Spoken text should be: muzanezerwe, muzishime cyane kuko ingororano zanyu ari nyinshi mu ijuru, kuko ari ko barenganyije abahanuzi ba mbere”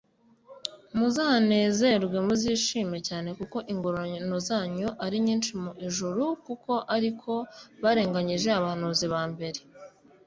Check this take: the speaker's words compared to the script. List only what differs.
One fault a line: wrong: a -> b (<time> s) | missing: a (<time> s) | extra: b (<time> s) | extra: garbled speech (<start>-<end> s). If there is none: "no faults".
no faults